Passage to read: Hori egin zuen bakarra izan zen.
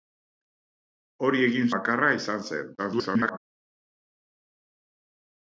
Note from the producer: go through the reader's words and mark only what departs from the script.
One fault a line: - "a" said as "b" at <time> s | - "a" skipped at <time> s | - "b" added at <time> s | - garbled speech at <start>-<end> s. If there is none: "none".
- "zuen" skipped at 1.7 s
- garbled speech at 2.8-3.4 s